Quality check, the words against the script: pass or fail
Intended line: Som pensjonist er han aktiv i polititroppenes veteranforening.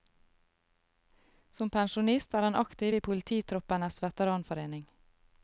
pass